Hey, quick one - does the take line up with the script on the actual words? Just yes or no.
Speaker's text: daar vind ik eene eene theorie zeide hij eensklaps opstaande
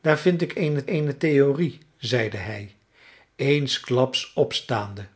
yes